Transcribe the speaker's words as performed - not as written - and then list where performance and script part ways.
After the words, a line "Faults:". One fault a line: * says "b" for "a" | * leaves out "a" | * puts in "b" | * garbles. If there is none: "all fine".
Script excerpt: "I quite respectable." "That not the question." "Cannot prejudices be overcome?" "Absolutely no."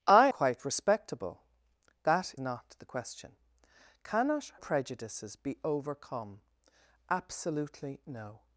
"I quite respectable." "That not the question." "Cannot prejudices be overcome?" "Absolutely no."
Faults:
all fine